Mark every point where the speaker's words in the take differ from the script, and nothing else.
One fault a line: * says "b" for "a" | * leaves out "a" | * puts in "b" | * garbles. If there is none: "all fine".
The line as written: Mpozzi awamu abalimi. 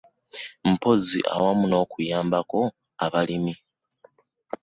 * puts in "n'okuyambako"